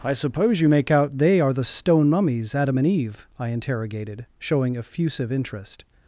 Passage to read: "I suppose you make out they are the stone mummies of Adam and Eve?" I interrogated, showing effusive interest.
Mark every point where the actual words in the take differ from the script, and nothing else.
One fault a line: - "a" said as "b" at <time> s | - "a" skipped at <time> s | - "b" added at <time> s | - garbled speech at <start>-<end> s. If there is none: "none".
- "of" skipped at 2.6 s